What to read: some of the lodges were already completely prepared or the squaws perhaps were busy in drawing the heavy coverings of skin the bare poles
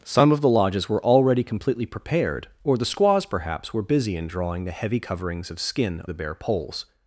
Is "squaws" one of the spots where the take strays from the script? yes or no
no